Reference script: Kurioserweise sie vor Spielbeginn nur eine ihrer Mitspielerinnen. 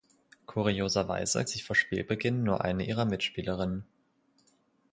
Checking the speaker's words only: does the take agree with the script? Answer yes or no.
yes